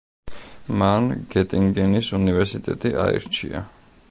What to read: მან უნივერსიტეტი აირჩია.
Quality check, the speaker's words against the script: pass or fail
fail